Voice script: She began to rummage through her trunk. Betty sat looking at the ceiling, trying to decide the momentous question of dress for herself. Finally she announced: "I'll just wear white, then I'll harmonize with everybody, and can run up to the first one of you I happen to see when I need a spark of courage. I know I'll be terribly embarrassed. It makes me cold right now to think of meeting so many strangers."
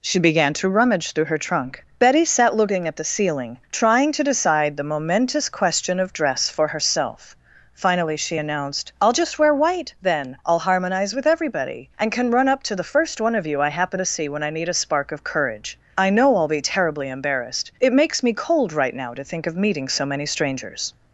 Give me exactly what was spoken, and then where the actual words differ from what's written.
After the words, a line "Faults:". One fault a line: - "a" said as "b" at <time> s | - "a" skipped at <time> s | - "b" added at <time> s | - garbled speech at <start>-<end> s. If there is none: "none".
She began to rummage through her trunk. Betty sat looking at the ceiling, trying to decide the momentous question of dress for herself. Finally she announced: "I'll just wear white, then I'll harmonize with everybody, and can run up to the first one of you I happen to see when I need a spark of courage. I know I'll be terribly embarrassed. It makes me cold right now to think of meeting so many strangers."
Faults:
none